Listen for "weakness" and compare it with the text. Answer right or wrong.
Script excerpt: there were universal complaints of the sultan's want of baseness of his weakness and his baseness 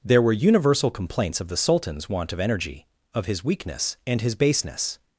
right